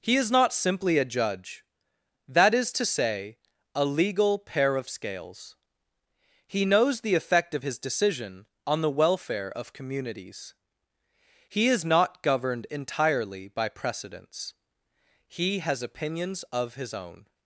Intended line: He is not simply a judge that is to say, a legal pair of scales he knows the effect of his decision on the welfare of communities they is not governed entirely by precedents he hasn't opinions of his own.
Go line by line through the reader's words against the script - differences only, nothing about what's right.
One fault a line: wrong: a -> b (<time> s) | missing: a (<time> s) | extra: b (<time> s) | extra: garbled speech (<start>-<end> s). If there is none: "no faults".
wrong: they -> he (11.5 s)
wrong: hasn't -> has (15.6 s)